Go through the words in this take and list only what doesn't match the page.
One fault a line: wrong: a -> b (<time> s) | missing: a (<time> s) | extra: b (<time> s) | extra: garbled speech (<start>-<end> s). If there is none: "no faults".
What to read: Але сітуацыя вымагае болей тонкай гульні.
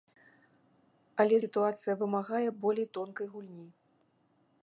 no faults